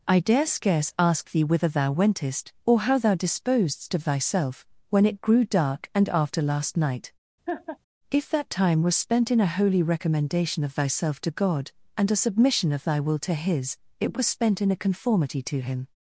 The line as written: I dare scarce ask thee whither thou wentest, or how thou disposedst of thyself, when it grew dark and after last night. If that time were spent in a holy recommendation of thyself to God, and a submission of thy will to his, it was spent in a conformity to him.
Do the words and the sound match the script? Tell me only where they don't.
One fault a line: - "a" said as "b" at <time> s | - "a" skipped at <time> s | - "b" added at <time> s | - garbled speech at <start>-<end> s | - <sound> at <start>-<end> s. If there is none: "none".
- laugh at 7.5-7.8 s
- "were" said as "was" at 8.8 s